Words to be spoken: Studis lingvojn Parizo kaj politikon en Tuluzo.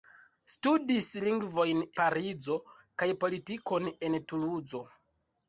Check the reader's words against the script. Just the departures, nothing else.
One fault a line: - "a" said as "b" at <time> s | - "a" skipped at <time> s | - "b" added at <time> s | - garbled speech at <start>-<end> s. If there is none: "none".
none